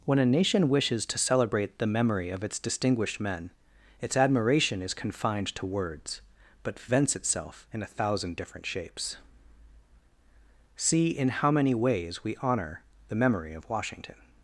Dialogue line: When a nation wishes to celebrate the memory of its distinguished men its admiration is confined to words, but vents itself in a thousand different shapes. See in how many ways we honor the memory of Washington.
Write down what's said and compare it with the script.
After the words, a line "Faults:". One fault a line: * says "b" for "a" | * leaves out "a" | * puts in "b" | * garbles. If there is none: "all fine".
When a nation wishes to celebrate the memory of its distinguished men its admiration is confined to words, but vents itself in a thousand different shapes. See in how many ways we honor the memory of Washington.
Faults:
all fine